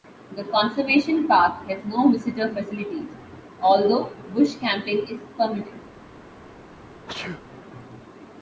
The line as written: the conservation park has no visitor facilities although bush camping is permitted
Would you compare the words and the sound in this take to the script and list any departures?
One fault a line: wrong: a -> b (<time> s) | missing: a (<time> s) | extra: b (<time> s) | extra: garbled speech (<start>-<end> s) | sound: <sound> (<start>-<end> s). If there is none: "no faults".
sound: sneeze (7.1-7.4 s)